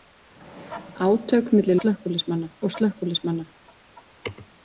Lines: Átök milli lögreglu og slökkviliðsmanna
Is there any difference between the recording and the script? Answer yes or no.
yes